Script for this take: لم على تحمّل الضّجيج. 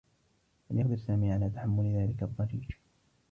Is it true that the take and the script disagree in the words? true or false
true